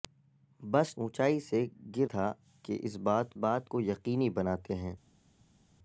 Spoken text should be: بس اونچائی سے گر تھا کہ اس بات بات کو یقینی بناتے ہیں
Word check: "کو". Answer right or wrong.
right